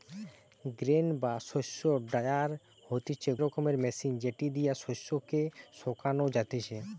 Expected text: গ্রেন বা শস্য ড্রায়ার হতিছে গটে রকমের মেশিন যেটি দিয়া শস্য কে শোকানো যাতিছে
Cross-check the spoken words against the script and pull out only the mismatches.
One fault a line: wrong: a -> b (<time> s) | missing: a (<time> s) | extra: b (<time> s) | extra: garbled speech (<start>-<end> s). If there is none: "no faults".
missing: গটে (3.3 s)